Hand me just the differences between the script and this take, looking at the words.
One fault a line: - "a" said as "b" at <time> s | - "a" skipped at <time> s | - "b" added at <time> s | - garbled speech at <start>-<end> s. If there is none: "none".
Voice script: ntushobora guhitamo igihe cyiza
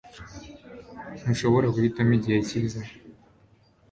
none